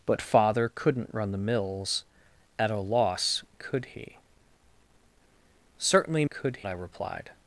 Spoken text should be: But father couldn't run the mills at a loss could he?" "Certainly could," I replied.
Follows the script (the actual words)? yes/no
yes